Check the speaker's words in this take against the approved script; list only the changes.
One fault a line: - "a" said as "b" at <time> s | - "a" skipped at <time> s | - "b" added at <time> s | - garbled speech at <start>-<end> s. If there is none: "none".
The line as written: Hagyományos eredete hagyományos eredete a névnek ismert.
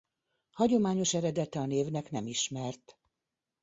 - "hagyományos eredete" skipped at 1.6 s
- "nem" added at 2.1 s